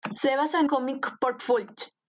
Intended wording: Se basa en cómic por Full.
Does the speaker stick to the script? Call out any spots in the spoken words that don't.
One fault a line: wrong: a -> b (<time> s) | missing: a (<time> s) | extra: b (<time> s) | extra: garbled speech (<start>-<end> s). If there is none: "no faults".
no faults